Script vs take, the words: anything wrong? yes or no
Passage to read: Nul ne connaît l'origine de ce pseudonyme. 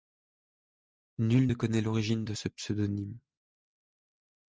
no